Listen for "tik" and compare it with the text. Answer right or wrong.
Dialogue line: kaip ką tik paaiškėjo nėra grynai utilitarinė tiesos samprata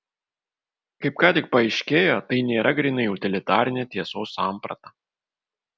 right